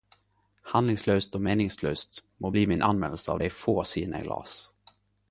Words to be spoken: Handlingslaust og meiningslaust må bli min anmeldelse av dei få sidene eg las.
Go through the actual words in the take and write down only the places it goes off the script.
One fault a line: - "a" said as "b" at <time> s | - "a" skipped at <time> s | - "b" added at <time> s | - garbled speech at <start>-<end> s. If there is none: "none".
none